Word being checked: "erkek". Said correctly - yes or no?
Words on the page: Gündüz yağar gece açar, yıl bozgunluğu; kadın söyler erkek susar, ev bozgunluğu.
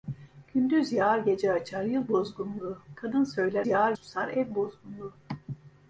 no